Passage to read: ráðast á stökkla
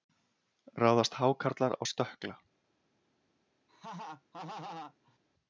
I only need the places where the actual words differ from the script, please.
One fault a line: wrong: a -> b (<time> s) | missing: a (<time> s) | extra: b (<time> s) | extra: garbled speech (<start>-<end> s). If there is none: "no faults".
extra: hákarlar (1.2 s)